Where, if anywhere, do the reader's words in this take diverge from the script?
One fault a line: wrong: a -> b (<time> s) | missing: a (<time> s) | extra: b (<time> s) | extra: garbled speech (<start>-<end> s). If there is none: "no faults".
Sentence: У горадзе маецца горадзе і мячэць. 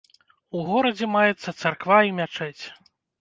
wrong: горадзе -> царква (1.6 s)